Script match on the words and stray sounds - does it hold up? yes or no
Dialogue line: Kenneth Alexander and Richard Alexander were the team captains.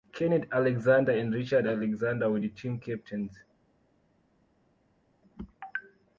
yes